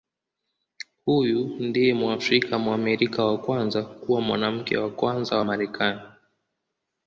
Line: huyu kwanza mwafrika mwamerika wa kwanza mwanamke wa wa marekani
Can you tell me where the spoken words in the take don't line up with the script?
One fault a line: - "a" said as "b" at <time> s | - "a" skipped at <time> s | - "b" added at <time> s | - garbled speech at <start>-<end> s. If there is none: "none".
- "kwanza" said as "ndiye" at 1.6 s
- "kuwa" added at 3.8 s
- "kwanza" added at 4.9 s